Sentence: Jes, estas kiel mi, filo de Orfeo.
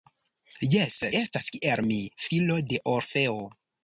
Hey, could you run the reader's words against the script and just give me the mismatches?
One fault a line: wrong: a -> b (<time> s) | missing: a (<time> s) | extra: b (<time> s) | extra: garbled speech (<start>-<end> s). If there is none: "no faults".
no faults